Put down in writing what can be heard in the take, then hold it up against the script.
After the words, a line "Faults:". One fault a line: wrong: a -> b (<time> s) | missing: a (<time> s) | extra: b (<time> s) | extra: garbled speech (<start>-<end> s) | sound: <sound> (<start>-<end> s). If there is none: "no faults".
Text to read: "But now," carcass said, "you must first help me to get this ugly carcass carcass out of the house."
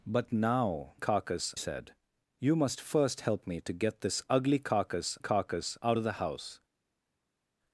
"But now," carcass said, "you must first help me to get this ugly carcass carcass out of the house."
Faults:
no faults